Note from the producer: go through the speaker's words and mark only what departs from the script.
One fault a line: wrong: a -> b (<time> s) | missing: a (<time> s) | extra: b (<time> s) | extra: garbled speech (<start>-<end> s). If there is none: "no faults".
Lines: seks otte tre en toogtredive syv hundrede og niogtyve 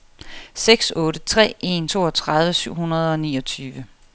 no faults